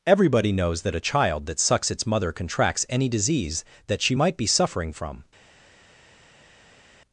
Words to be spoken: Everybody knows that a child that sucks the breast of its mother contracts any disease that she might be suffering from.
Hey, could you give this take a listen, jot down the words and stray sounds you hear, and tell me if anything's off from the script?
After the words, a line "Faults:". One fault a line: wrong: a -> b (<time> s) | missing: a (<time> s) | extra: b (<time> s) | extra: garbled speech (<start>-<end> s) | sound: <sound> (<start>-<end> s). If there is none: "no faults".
Everybody knows that a child that sucks its mother contracts any disease that she might be suffering from.
Faults:
missing: the breast of (1.9 s)